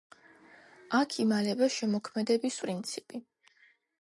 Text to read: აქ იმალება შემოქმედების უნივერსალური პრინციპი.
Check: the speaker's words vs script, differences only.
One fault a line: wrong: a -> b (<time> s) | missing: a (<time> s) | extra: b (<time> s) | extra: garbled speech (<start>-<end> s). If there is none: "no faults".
missing: უნივერსალური (2.6 s)